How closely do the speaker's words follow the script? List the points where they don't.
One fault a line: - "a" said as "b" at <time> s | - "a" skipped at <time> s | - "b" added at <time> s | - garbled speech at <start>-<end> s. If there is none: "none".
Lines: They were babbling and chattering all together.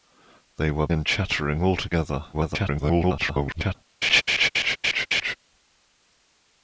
- "babbling" skipped at 0.9 s
- garbled speech at 2.3-3.8 s